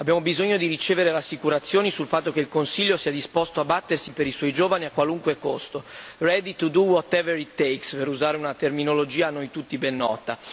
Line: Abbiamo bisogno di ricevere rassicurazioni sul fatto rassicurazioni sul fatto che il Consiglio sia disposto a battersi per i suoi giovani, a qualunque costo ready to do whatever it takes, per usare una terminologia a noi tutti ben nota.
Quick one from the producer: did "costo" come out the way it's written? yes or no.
yes